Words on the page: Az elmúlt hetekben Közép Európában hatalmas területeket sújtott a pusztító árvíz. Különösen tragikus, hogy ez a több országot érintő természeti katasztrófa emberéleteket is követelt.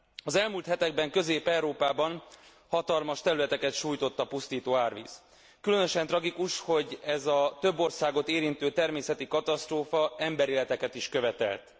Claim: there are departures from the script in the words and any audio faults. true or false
false